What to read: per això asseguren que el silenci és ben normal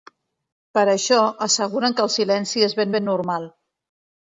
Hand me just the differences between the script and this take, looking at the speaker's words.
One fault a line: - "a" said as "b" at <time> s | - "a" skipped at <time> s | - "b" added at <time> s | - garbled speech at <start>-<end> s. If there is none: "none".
- "ben" added at 3.0 s